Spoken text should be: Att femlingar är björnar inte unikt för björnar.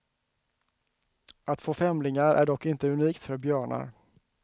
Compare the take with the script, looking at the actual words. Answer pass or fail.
fail